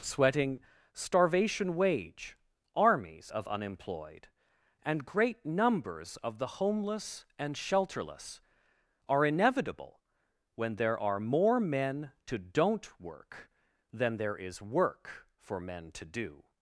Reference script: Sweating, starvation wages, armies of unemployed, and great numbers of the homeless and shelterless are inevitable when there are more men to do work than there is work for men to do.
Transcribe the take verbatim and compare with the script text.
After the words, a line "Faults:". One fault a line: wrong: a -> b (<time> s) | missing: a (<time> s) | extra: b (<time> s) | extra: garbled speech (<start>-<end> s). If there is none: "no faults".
Sweating, starvation wage, armies of unemployed, and great numbers of the homeless and shelterless are inevitable when there are more men to don't work than there is work for men to do.
Faults:
wrong: wages -> wage (1.8 s)
wrong: do -> don't (12.4 s)